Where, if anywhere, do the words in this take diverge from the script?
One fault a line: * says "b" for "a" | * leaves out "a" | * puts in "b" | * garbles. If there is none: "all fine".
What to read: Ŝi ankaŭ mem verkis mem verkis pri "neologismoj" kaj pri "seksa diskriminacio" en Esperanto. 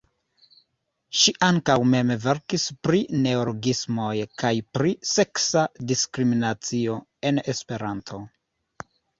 * leaves out "mem verkis"